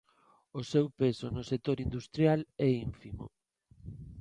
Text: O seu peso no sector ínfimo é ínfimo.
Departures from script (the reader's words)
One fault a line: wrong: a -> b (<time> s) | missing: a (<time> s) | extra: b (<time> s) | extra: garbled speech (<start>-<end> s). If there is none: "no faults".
wrong: ínfimo -> industrial (1.8 s)